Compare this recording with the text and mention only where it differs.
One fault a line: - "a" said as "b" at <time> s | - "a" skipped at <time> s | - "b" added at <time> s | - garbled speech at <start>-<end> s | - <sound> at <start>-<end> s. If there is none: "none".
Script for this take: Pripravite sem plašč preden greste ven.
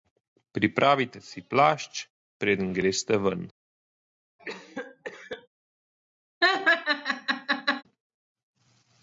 - "sem" said as "si" at 1.2 s
- cough at 4.4-5.5 s
- laugh at 6.4-7.8 s